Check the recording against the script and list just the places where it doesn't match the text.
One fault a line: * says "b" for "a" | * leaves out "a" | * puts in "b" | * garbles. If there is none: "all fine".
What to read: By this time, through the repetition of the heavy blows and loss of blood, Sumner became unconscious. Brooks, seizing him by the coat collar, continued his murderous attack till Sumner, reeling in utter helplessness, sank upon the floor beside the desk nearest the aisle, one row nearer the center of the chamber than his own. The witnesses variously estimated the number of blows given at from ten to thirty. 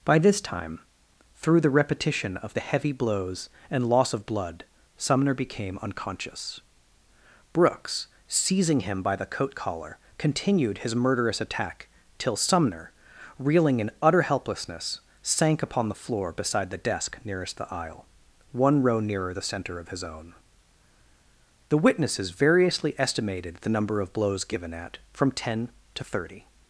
* leaves out "the chamber than"